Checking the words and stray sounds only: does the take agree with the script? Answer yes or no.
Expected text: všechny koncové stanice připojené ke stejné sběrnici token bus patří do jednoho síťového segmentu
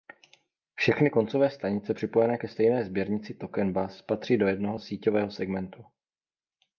yes